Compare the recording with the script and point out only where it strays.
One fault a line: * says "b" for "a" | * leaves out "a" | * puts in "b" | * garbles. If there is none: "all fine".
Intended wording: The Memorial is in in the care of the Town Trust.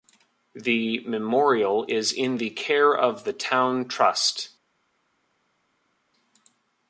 * leaves out "in"